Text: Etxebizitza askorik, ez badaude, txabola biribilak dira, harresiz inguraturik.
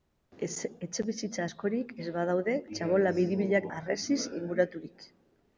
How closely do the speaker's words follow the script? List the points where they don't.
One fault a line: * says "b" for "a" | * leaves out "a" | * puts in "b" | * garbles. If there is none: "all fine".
* leaves out "dira"